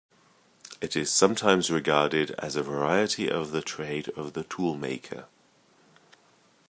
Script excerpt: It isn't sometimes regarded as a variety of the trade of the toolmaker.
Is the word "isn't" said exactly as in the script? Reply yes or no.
no